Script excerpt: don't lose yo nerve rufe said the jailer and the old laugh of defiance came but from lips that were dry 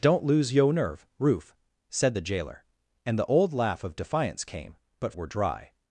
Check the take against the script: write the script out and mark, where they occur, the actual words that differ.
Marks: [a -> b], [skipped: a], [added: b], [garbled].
don't lose yo nerve rufe said the jailer and the old laugh of defiance came but [skipped: from lips that] were dry